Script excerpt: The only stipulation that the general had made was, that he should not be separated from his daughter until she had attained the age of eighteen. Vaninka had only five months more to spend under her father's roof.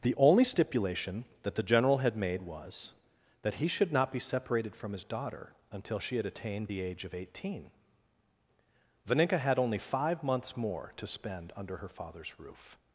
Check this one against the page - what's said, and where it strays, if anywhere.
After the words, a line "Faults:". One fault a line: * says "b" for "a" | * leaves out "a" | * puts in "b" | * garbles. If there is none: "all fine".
The only stipulation that the general had made was, that he should not be separated from his daughter until she had attained the age of eighteen. Vaninka had only five months more to spend under her father's roof.
Faults:
all fine